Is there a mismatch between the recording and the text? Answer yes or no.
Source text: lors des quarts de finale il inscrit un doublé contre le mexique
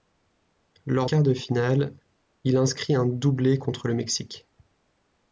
yes